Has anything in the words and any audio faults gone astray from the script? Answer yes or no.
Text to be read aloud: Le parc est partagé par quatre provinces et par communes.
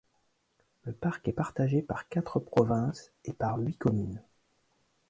yes